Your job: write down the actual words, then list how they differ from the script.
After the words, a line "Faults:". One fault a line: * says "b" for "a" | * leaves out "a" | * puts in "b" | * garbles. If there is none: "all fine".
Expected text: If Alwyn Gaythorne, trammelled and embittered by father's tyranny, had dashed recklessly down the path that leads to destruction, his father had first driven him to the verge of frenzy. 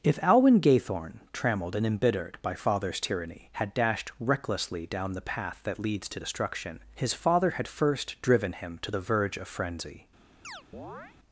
If Alwyn Gaythorne, trammelled and embittered by father's tyranny, had dashed recklessly down the path that leads to destruction, his father had first driven him to the verge of frenzy.
Faults:
all fine